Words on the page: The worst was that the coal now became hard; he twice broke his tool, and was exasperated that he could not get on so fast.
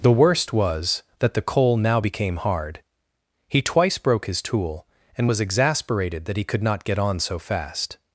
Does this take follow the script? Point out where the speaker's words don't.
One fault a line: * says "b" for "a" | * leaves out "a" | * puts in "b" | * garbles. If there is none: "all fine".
all fine